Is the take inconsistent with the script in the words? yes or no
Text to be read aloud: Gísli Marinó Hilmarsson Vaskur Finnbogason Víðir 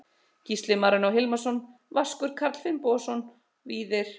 yes